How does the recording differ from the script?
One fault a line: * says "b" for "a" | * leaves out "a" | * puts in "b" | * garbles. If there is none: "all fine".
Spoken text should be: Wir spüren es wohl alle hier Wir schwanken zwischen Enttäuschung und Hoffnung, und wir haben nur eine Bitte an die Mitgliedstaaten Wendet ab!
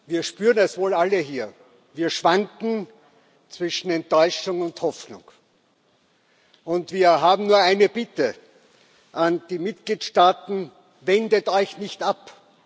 * puts in "euch nicht"